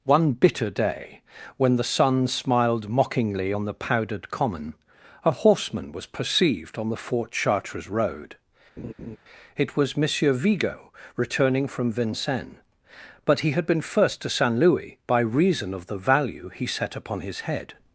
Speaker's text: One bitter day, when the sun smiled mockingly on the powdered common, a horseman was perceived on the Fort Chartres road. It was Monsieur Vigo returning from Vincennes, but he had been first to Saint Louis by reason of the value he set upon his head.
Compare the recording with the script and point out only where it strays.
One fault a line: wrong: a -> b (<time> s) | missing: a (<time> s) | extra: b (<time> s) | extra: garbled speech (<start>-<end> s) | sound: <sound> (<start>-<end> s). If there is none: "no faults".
sound: laugh (8.8-9.2 s)